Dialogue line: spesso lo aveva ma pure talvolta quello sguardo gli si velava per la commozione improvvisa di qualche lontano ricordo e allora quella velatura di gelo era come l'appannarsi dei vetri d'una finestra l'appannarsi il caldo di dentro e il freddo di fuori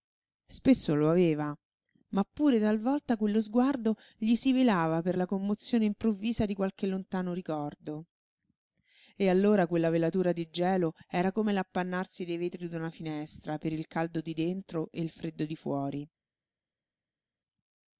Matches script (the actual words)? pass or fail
fail